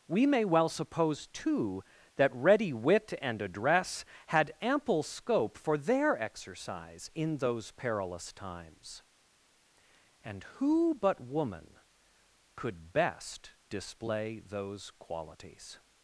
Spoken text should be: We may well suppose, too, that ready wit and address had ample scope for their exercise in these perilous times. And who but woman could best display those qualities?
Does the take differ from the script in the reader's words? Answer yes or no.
yes